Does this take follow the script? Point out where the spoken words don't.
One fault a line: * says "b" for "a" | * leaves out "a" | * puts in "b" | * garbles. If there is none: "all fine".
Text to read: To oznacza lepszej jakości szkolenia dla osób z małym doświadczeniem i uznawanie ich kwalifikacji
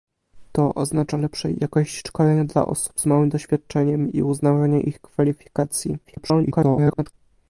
* garbles